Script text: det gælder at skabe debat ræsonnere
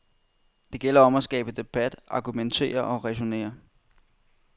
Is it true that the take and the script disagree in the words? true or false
true